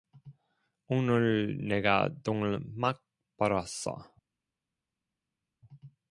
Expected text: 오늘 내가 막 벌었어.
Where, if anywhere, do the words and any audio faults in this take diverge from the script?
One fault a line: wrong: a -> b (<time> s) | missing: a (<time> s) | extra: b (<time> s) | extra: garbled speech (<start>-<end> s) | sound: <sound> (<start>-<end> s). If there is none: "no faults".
extra: 돈을 (2.2 s)